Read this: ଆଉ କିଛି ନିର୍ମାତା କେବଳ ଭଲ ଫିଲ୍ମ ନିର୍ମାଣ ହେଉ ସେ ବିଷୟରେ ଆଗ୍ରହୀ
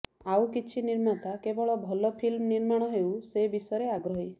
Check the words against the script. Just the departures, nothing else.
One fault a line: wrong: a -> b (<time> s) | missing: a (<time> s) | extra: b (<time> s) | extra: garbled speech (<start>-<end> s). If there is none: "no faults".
no faults